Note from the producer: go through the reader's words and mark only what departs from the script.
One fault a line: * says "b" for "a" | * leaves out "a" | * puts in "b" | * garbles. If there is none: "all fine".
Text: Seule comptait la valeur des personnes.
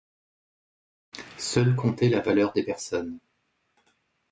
all fine